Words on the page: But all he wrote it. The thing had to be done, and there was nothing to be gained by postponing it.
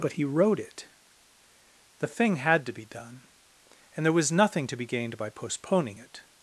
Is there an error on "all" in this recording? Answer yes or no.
yes